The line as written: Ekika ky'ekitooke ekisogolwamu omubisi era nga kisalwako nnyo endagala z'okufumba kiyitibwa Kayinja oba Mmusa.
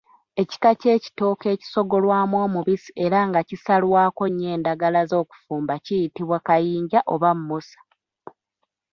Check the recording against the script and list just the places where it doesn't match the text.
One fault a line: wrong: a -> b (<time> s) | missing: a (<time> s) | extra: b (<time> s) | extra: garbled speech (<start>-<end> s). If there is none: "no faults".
no faults